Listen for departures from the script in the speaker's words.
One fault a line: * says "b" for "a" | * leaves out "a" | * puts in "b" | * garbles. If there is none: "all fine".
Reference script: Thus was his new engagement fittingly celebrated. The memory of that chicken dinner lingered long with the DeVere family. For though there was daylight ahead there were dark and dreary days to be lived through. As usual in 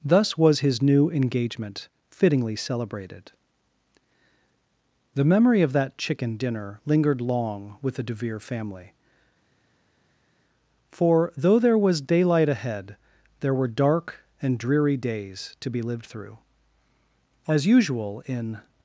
all fine